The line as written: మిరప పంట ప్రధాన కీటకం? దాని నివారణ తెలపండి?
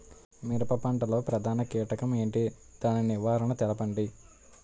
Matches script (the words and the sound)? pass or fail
fail